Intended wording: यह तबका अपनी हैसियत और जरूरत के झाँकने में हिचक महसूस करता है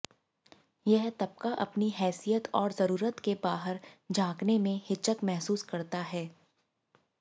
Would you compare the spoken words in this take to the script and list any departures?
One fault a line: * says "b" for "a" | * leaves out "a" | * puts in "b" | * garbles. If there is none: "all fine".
* puts in "बाहर"